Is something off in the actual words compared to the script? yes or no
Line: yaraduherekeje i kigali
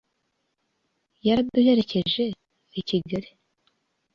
no